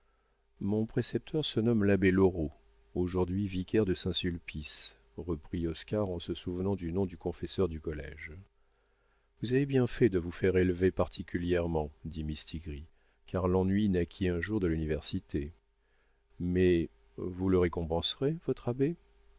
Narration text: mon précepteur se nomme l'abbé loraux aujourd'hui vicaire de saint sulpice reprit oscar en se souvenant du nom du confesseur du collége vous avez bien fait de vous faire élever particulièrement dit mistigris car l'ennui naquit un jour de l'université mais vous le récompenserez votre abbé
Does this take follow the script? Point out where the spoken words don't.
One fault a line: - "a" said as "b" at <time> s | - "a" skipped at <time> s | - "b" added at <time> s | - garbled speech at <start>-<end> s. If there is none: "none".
none